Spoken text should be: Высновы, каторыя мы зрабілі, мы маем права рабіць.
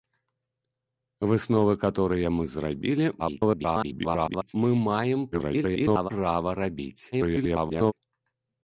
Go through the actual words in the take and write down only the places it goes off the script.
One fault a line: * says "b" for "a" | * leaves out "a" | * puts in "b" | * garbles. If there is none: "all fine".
* garbles
* garbles
* garbles